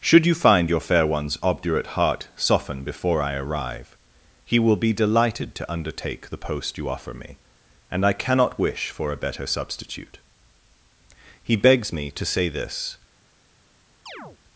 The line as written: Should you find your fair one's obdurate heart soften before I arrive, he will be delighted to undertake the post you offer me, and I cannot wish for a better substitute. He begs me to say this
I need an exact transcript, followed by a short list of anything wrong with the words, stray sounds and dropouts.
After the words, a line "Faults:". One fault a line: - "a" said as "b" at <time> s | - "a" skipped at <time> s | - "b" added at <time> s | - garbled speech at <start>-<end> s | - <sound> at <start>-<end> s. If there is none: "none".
Should you find your fair one's obdurate heart soften before I arrive, he will be delighted to undertake the post you offer me, and I cannot wish for a better substitute. He begs me to say this
Faults:
- chirp at 14.1-14.4 s